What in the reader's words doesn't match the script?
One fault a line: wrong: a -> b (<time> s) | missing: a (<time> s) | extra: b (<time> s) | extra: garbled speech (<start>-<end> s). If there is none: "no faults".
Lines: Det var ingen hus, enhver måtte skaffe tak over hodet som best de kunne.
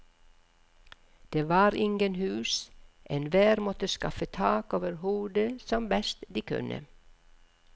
no faults